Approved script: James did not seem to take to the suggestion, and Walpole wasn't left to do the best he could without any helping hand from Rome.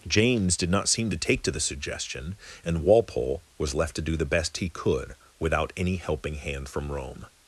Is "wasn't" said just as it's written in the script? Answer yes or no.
no